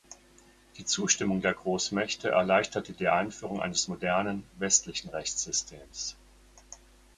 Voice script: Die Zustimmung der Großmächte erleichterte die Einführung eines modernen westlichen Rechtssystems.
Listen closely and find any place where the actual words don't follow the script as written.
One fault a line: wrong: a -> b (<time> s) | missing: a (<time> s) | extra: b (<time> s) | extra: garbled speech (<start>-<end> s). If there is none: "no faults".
no faults